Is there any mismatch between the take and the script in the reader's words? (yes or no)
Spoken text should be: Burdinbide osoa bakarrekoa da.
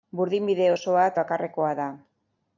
no